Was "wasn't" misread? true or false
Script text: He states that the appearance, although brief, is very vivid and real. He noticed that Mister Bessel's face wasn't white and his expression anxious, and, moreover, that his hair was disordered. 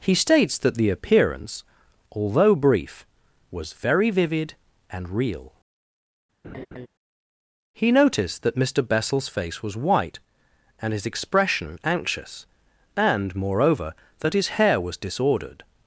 true